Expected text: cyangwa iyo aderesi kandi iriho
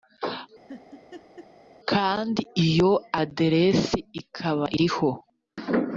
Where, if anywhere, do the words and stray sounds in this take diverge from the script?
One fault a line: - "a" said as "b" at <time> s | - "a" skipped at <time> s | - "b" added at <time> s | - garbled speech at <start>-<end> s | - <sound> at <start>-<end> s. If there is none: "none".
- laugh at 0.7-1.5 s
- "cyangwa" said as "kandi" at 1.9 s
- "kandi" said as "ikaba" at 4.2 s